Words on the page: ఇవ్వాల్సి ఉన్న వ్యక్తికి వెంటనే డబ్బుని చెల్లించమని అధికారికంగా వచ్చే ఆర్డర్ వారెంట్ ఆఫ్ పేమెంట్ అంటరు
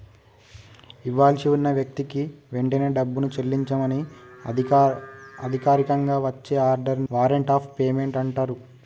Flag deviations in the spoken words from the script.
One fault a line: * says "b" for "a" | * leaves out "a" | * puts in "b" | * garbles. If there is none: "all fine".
all fine